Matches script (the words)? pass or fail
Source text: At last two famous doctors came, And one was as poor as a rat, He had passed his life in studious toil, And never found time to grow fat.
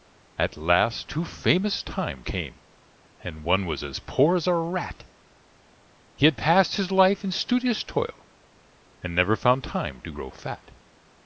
fail